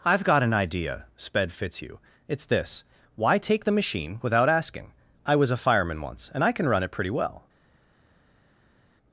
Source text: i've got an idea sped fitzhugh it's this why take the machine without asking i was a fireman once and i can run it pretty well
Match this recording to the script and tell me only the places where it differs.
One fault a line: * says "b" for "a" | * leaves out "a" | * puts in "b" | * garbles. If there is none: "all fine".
all fine